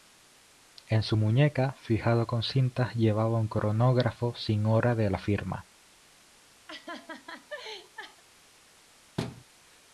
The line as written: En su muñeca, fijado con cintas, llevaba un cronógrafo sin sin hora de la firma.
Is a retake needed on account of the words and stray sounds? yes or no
yes